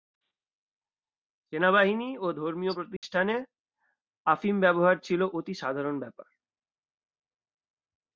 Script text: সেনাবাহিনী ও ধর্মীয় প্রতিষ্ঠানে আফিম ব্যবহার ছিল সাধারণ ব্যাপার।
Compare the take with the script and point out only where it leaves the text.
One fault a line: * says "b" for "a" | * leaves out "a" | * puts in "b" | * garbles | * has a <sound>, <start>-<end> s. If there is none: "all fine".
* has a dropout, 3.0-3.0 s
* puts in "অতি"